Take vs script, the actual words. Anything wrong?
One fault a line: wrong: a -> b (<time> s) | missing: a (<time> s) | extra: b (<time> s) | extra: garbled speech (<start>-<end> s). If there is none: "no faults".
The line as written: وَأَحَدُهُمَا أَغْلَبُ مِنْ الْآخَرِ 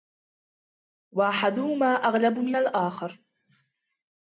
no faults